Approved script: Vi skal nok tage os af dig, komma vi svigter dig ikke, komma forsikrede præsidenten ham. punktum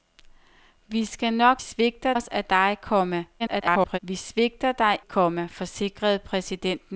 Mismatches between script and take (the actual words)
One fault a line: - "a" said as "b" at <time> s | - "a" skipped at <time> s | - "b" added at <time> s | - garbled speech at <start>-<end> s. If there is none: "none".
- "tage" said as "svigter" at 1.6 s
- garbled speech at 3.4-4.0 s
- "ikke" skipped at 5.0 s